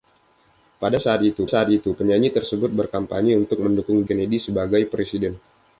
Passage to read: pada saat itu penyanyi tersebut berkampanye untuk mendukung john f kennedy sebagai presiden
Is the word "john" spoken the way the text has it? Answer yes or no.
no